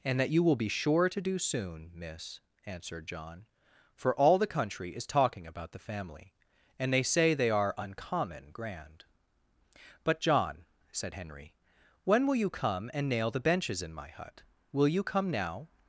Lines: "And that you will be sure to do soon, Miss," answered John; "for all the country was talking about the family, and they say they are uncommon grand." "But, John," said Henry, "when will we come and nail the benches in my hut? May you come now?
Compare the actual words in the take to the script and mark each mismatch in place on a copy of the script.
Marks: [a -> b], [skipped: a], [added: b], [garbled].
"And that you will be sure to do soon, Miss," answered John; "for all the country [was -> is] talking about the family, and they say they are uncommon grand." "But, John," said Henry, "when will [we -> you] come and nail the benches in my hut? [May -> Will] you come now?